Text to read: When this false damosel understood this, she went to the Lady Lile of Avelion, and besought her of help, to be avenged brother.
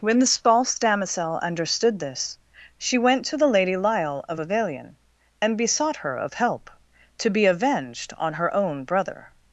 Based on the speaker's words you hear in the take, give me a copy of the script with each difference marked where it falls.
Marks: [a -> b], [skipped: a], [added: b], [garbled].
When this false damosel understood this, she went to the Lady Lile of Avelion, and besought her of help, to be avenged [added: on her own] brother.